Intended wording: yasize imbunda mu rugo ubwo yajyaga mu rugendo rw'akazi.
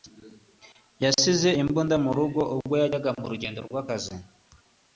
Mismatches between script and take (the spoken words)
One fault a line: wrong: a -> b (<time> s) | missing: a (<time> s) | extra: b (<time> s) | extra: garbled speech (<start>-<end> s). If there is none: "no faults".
no faults